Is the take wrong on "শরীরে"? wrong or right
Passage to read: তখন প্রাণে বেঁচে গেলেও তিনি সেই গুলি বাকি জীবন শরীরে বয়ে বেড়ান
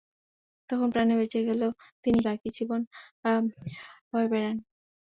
wrong